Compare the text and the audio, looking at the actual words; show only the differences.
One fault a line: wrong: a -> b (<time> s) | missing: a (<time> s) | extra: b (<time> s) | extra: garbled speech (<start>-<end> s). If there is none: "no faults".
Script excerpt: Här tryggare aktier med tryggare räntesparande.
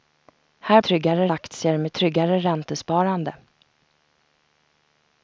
no faults